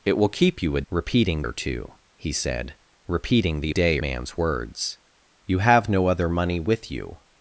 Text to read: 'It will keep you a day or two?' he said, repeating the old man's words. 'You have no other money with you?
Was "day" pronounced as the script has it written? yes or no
no